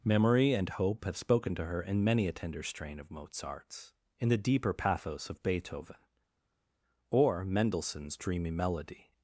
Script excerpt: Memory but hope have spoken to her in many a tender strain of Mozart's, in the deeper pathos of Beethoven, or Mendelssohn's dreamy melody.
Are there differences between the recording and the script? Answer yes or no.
yes